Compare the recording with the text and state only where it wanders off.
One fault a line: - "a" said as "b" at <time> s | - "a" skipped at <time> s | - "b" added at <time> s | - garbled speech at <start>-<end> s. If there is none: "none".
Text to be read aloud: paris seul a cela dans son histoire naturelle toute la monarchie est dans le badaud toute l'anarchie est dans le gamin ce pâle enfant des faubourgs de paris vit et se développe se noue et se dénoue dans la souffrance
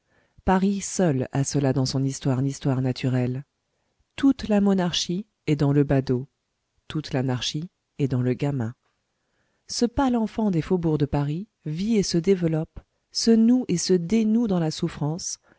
- "histoire" added at 2.4 s